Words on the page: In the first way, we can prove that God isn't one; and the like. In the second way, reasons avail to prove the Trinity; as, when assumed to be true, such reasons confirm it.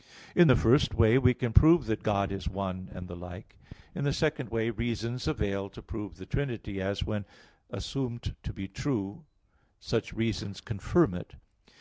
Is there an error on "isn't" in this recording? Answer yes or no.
yes